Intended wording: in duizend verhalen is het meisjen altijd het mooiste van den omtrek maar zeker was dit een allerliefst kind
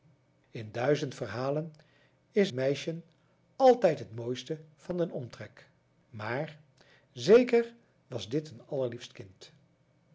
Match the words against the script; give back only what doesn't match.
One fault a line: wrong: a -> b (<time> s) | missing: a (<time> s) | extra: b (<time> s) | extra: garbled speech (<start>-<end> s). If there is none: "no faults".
missing: het (2.5 s)